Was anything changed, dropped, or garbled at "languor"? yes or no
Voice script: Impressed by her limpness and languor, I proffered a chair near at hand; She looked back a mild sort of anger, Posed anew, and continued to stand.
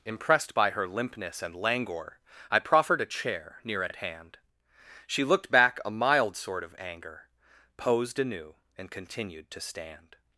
no